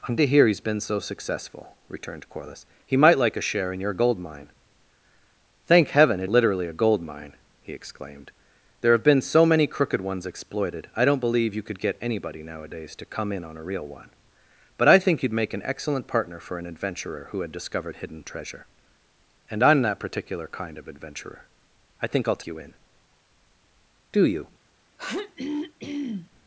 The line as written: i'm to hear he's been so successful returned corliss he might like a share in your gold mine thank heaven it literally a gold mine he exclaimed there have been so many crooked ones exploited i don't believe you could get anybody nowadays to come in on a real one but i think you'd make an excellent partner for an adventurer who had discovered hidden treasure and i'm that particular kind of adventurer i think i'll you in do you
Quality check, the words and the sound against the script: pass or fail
fail